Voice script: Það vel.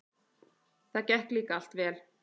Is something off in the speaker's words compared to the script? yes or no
yes